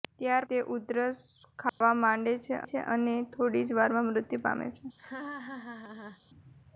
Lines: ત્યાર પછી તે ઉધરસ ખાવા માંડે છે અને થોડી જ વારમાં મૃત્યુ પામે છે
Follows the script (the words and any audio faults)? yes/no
no